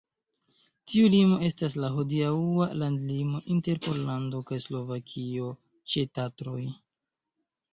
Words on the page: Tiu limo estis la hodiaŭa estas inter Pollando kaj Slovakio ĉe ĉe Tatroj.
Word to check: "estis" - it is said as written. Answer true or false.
false